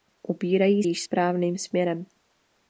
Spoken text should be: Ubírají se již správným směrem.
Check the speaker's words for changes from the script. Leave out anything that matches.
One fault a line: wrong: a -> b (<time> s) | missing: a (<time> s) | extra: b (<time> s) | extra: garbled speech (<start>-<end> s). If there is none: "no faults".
missing: se (0.8 s)